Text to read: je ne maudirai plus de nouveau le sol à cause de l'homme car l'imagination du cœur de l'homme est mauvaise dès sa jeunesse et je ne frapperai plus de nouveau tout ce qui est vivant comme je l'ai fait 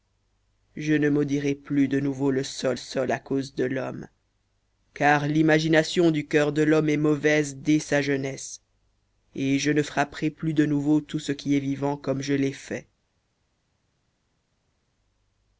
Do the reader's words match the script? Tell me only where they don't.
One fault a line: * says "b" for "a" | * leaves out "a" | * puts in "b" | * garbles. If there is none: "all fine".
* puts in "sol"